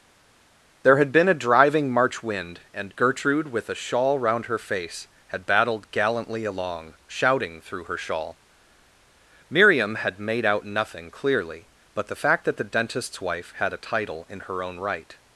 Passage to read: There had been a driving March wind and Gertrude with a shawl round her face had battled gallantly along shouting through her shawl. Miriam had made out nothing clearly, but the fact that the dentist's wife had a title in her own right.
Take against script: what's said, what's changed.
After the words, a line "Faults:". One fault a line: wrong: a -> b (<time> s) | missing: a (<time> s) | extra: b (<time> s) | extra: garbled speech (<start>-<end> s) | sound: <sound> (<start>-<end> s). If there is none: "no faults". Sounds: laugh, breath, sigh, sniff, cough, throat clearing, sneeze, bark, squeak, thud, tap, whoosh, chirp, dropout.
There had been a driving March wind and Gertrude with a shawl round her face had battled gallantly along shouting through her shawl. Miriam had made out nothing clearly, but the fact that the dentist's wife had a title in her own right.
Faults:
no faults